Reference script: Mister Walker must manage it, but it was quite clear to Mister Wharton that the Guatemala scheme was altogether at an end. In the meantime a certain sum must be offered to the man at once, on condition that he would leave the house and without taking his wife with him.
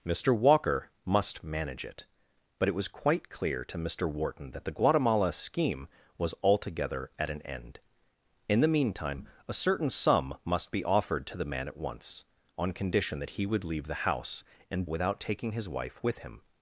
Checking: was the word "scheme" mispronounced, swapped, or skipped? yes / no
no